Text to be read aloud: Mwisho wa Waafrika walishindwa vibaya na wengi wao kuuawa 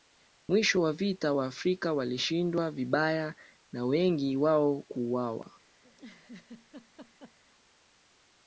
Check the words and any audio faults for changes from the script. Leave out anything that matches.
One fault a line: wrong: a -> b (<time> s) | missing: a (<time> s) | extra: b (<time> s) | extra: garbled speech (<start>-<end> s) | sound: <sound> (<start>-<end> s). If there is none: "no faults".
extra: vita (0.9 s)
sound: laugh (5.8-7.4 s)